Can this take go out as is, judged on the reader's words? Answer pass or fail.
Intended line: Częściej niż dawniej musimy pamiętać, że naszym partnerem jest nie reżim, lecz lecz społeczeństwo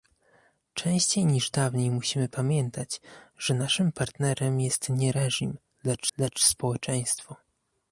pass